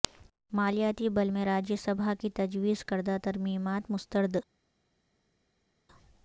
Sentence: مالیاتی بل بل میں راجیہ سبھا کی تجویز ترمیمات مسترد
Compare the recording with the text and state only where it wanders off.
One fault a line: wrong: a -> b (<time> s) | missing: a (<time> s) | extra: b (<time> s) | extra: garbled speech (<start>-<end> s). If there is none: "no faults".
missing: بل (1.3 s)
extra: کردہ (2.9 s)